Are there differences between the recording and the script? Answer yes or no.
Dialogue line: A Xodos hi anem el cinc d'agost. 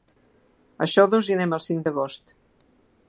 no